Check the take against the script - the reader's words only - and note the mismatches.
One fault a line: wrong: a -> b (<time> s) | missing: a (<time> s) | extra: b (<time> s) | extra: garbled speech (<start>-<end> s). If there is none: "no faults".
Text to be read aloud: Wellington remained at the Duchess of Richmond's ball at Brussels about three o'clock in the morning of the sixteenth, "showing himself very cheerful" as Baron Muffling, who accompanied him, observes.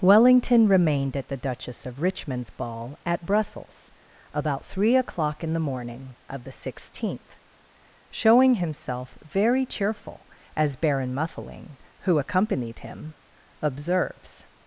no faults